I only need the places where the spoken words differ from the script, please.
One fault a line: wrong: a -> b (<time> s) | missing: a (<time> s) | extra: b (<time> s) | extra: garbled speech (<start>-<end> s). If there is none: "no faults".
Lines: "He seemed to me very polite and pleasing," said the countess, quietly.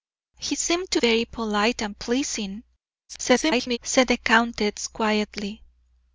missing: me (1.0 s)
extra: garbled speech (3.1-3.8 s)